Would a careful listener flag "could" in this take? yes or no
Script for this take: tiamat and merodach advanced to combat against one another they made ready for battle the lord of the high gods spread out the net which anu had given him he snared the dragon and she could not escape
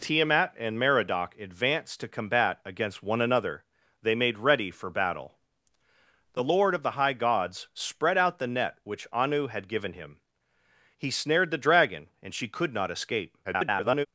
no